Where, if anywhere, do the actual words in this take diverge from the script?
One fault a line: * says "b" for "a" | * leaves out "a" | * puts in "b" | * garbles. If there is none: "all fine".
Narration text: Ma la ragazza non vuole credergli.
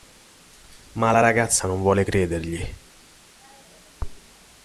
all fine